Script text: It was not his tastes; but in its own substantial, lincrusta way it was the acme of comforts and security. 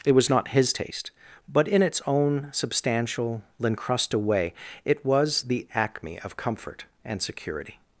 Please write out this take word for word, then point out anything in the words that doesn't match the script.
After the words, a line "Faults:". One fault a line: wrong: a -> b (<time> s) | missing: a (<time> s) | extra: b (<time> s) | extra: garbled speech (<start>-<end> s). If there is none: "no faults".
It was not his taste; but in its own substantial, lincrusta way it was the acme of comfort and security.
Faults:
wrong: tastes -> taste (0.7 s)
wrong: comforts -> comfort (6.4 s)